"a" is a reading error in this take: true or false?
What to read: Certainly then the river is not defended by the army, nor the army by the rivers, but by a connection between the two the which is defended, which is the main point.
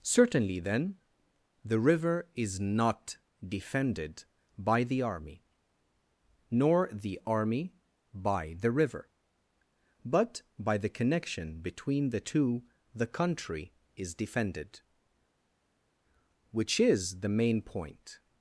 true